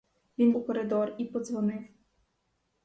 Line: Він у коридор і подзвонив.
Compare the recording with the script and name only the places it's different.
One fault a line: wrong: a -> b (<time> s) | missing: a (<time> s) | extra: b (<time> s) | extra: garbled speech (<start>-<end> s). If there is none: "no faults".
no faults